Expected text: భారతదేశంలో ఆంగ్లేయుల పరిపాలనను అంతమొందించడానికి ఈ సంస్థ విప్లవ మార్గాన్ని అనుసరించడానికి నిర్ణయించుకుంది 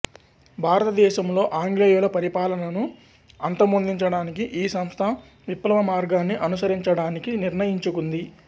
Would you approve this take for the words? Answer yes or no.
yes